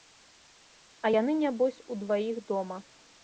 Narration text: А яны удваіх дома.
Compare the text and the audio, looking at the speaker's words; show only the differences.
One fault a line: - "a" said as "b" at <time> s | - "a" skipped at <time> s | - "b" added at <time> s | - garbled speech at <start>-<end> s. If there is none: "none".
- "нябось" added at 1.4 s